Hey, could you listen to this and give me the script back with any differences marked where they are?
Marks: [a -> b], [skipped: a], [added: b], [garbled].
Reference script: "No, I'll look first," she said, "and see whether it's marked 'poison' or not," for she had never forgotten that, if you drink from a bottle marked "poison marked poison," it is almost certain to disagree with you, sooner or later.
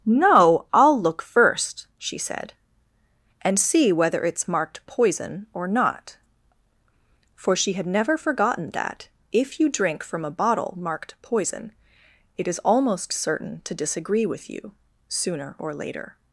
"No, I'll look first," she said, "and see whether it's marked 'poison' or not," for she had never forgotten that, if you drink from a bottle marked "poison [skipped: marked poison,"] it is almost certain to disagree with you, sooner or later.